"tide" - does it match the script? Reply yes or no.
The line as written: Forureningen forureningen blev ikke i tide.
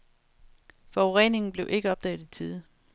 yes